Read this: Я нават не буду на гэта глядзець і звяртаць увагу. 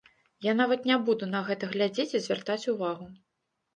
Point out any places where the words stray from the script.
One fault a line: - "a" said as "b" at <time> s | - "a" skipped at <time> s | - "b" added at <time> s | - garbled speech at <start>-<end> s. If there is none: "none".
none